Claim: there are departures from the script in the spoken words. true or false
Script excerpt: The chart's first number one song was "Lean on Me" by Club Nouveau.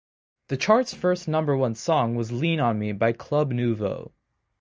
false